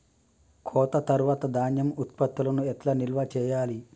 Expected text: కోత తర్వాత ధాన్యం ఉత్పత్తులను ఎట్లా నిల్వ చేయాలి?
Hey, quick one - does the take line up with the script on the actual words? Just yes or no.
yes